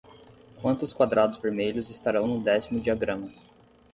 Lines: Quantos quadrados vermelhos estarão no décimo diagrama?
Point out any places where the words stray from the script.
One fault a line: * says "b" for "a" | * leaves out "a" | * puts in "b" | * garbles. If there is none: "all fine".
all fine